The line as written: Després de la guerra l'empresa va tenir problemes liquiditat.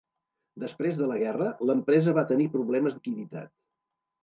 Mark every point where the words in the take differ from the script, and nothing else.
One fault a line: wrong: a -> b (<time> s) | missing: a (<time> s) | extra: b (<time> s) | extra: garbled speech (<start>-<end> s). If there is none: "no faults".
no faults